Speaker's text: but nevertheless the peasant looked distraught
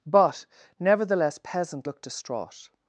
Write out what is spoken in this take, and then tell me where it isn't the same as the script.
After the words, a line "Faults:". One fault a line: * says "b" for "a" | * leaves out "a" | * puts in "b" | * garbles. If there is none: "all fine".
but nevertheless peasant looked distraught
Faults:
* leaves out "the"